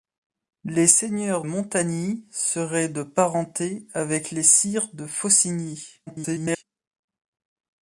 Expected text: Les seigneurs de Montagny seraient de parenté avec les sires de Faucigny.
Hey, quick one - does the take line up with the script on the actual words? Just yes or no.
no